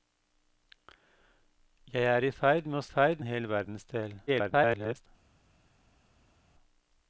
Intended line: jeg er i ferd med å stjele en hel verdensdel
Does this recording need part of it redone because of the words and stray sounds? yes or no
yes